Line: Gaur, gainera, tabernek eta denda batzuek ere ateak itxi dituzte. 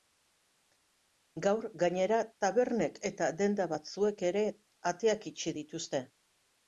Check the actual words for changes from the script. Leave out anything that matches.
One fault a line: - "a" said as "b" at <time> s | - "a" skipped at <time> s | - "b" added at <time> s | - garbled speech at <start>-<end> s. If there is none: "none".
none